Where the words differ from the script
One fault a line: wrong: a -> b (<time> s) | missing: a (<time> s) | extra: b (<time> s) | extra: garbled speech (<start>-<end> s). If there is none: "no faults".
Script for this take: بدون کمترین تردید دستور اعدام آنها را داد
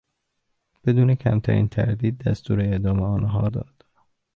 missing: را (3.5 s)